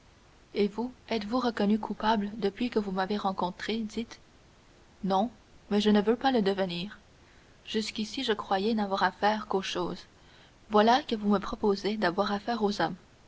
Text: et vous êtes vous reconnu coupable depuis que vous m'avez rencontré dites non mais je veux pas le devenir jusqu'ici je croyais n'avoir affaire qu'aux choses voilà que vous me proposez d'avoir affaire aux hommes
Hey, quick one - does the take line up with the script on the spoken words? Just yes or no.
no